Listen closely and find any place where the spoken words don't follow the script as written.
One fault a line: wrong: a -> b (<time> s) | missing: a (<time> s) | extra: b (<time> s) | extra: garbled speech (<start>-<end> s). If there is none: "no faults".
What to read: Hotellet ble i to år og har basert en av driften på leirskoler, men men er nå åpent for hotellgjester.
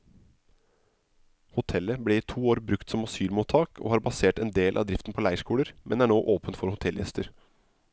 extra: brukt som asylmottak (2.7 s)
extra: del (4.6 s)
missing: men (6.1 s)